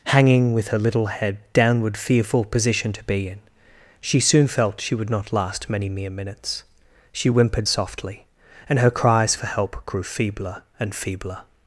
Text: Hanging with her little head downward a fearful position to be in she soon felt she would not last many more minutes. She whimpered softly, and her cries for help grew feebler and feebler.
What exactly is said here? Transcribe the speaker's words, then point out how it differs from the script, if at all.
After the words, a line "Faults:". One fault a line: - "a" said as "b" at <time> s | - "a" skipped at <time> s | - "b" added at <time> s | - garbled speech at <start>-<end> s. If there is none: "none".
Hanging with her little head downward fearful position to be in she soon felt she would not last many mere minutes. She whimpered softly, and her cries for help grew feebler and feebler.
Faults:
- "a" skipped at 2.0 s
- "more" said as "mere" at 5.9 s